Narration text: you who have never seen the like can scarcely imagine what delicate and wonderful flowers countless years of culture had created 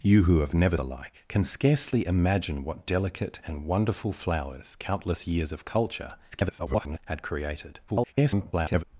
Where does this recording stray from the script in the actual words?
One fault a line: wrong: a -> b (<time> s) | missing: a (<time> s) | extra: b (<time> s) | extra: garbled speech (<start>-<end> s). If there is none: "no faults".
missing: seen (0.8 s)
extra: garbled speech (6.3-7.0 s)
extra: garbled speech (7.9-8.8 s)